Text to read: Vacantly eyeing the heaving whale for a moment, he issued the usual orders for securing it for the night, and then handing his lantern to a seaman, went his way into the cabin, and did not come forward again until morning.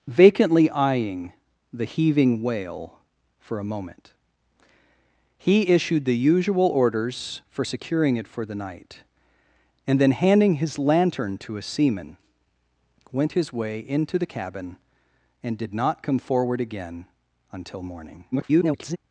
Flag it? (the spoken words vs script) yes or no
yes